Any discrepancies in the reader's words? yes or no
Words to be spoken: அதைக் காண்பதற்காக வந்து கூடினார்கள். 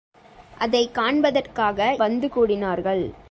no